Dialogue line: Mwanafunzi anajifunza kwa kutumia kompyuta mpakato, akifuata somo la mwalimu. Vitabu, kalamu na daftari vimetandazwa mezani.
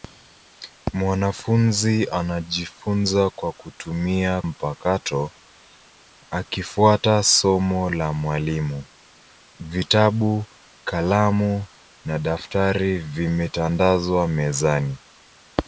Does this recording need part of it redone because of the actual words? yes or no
yes